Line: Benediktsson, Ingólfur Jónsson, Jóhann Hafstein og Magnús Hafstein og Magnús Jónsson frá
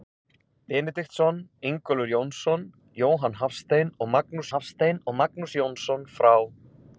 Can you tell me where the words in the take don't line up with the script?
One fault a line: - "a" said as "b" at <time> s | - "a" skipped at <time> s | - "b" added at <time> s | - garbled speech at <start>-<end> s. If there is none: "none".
none